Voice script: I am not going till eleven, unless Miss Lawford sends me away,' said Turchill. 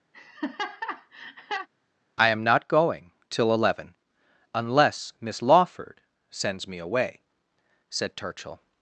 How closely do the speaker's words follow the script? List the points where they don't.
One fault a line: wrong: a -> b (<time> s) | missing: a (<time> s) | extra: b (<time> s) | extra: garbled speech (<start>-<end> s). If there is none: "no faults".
no faults